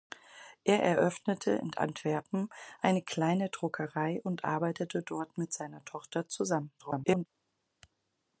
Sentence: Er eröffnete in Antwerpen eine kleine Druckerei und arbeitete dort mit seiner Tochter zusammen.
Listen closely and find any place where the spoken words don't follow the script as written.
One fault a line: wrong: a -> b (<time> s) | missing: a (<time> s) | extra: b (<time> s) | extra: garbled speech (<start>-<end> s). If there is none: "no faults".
extra: garbled speech (6.8-7.3 s)